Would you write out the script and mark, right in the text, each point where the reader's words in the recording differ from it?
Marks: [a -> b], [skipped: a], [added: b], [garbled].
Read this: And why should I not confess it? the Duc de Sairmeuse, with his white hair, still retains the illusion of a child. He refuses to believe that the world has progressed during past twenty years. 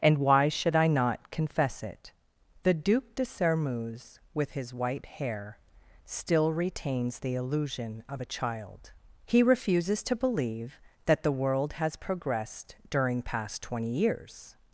And why should I not confess it? the Duc de Sairmeuse, with his white hair, still retains the illusion of a child. He refuses to believe that the world has progressed during past twenty years.